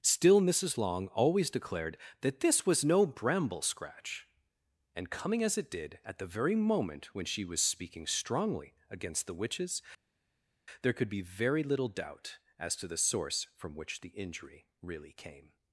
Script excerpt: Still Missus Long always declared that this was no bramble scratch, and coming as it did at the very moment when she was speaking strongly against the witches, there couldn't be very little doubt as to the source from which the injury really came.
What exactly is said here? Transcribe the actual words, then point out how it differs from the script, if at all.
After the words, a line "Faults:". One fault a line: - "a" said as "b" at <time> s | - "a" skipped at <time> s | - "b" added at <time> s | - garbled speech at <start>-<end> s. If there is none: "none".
Still Missus Long always declared that this was no bramble scratch, and coming as it did at the very moment when she was speaking strongly against the witches, there could be very little doubt as to the source from which the injury really came.
Faults:
- "couldn't" said as "could" at 10.9 s